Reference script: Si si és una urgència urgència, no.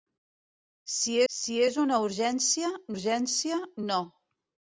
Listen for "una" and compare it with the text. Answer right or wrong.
right